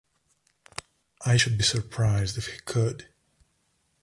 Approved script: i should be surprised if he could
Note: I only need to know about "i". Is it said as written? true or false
true